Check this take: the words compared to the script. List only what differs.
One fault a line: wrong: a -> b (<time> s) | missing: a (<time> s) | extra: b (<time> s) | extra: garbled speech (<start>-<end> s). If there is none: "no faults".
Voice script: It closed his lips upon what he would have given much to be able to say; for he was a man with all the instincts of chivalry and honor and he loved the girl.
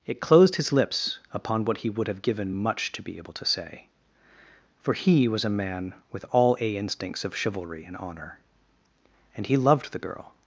wrong: the -> a (6.6 s)